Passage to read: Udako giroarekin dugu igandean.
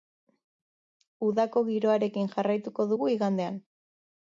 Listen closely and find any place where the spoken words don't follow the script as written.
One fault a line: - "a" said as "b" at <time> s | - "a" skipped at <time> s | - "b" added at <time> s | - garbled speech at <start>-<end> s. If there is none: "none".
- "jarraituko" added at 2.4 s